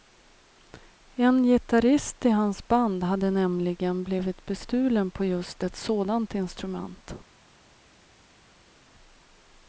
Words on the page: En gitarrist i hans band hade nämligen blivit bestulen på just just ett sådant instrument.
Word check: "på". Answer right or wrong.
right